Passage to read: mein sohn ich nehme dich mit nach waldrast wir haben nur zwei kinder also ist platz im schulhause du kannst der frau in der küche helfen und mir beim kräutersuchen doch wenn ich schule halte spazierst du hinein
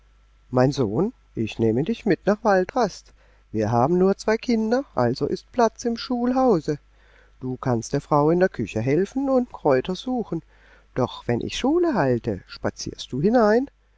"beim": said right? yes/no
no